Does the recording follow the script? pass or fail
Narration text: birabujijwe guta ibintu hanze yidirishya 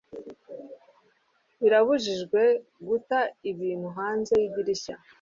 pass